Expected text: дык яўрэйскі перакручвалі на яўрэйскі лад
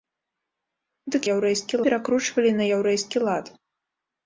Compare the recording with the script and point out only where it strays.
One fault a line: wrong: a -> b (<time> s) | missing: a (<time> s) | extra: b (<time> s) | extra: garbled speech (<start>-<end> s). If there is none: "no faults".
no faults